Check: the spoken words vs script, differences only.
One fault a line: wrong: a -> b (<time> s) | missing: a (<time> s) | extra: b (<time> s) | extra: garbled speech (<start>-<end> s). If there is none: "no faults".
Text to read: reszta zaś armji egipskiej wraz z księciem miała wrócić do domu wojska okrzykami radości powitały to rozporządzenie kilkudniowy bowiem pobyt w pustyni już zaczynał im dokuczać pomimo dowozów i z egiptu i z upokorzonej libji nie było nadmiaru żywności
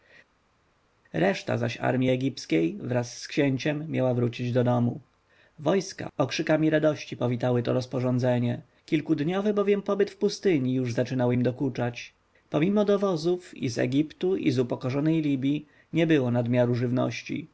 no faults